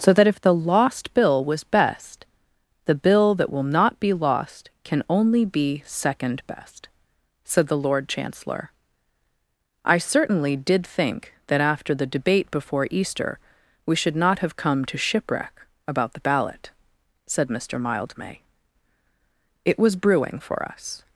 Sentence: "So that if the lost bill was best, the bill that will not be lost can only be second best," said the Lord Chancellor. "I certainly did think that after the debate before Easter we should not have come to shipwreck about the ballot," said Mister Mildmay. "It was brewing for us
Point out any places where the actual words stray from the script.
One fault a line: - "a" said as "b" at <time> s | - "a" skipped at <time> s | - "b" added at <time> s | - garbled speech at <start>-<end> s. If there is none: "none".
none